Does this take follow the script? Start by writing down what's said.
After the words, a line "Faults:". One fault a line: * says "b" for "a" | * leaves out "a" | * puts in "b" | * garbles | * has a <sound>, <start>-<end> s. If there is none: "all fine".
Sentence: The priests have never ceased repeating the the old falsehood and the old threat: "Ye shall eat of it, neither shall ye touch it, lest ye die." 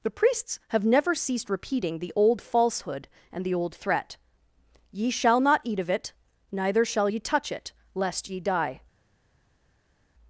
The priests have never ceased repeating the old falsehood and the old threat: "Ye shall not eat of it, neither shall ye touch it, lest ye die."
Faults:
* leaves out "the"
* puts in "not"